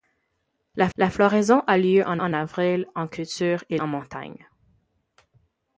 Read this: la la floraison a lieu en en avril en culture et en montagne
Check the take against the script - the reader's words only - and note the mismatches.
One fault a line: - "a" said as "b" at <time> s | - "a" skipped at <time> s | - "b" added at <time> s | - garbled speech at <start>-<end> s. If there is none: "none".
none